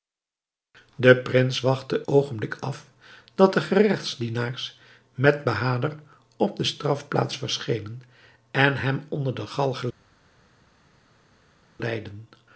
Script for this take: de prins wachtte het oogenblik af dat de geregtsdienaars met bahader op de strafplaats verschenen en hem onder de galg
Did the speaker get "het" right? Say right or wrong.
wrong